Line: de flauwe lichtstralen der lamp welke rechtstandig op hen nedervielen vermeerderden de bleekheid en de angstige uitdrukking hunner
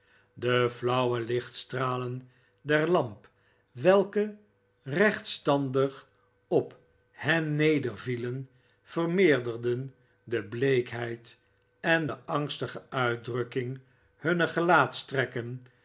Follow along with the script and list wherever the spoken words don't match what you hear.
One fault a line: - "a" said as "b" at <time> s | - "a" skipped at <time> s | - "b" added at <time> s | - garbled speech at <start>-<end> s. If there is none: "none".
none